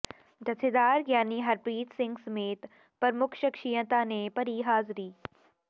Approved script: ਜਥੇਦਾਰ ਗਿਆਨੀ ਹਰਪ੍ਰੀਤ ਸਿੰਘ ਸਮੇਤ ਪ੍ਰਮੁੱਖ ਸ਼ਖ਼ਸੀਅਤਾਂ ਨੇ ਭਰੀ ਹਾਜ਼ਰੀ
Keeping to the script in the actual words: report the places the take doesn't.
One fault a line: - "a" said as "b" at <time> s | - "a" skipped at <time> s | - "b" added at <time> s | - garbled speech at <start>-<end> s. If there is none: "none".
none